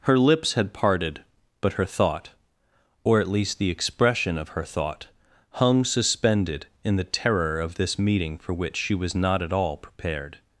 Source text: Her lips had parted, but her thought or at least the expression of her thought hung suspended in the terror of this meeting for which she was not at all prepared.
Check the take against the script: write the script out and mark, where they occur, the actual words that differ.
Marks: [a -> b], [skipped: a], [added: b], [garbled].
Her lips had parted, but her thought or at least the expression of her thought hung suspended in the terror of this meeting for which she was not at all prepared.